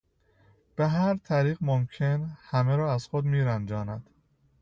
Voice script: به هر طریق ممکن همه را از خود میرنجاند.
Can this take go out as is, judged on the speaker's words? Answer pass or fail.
pass